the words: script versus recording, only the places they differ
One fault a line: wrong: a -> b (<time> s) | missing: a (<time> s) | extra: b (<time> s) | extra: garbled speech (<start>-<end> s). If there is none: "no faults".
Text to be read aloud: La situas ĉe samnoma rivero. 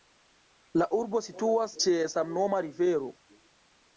extra: urbo (1.0 s)